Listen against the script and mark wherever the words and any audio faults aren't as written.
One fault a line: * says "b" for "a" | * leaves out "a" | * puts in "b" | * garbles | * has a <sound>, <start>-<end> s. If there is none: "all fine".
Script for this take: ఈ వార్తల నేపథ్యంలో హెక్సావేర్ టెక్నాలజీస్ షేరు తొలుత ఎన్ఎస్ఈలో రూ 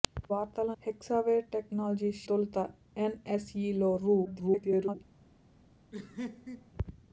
* leaves out "నేపథ్యంలో"
* leaves out "షేరు"
* garbles
* has a laugh, 5.9-6.7 s